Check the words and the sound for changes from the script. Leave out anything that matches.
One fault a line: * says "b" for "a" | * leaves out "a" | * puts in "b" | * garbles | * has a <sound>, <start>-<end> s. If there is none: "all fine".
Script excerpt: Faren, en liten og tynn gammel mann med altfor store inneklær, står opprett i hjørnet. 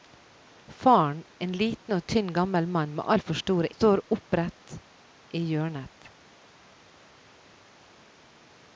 * leaves out "inneklær"